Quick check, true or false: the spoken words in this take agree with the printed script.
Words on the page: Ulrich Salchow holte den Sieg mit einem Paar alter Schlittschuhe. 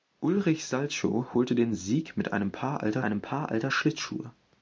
false